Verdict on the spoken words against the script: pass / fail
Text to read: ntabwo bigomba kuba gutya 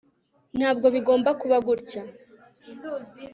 pass